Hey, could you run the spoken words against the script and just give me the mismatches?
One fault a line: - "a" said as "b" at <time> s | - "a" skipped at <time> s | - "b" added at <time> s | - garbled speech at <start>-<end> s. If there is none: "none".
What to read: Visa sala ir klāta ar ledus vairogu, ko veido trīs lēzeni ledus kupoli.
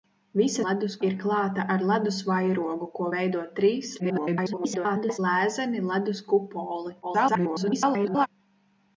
- "sala" said as "ledus" at 0.7 s
- garbled speech at 4.0-5.2 s
- garbled speech at 7.0-8.3 s